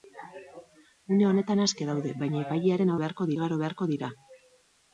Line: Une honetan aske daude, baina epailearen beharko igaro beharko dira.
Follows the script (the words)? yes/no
yes